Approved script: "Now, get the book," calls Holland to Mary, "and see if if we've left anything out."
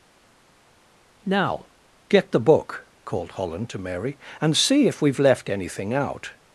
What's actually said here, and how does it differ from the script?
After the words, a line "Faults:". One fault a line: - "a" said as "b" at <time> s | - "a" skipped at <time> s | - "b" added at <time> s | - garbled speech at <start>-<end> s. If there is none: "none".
"Now, get the book," called Holland to Mary, "and see if we've left anything out."
Faults:
- "calls" said as "called" at 3.0 s
- "if" skipped at 5.0 s